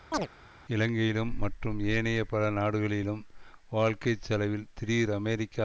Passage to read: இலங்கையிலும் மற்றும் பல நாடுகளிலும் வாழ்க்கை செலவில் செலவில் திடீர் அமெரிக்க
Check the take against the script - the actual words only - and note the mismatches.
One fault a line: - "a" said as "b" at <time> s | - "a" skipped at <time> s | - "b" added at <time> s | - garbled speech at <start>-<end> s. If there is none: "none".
- "ஏனைய" added at 1.9 s
- "செலவில்" skipped at 4.7 s